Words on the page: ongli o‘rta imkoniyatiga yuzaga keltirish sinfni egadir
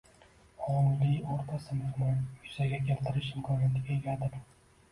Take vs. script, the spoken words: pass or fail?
fail